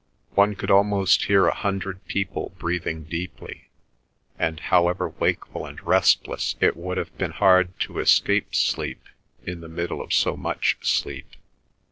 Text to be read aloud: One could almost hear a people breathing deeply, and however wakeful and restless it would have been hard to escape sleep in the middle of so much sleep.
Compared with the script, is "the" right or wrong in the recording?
right